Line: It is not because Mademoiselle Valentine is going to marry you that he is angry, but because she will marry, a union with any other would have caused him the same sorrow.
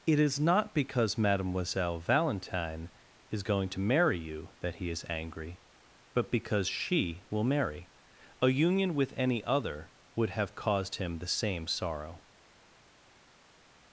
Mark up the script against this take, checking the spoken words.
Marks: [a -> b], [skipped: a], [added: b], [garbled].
It is not because Mademoiselle Valentine is going to marry you that he is angry, but because she will marry, a union with any other would have caused him the same sorrow.